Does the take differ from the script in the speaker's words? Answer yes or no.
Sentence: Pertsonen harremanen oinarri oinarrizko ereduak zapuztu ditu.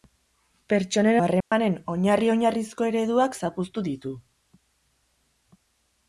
no